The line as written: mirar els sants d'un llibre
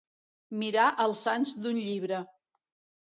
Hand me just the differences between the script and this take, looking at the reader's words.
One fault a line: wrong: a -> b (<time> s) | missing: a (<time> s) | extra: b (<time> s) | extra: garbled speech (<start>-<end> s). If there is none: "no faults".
no faults